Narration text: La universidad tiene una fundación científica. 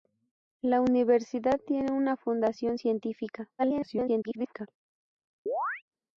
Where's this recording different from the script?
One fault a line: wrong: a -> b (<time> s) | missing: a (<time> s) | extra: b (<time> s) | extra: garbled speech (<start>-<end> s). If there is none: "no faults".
extra: garbled speech (3.6-4.7 s)